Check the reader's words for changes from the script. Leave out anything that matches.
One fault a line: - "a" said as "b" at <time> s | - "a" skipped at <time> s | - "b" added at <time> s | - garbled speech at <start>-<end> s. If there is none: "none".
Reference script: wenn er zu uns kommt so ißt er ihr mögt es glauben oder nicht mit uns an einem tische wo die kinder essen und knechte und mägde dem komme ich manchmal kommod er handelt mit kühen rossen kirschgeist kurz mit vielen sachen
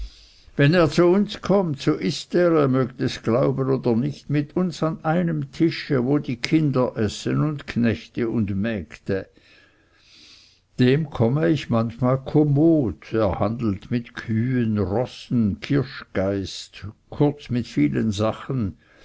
none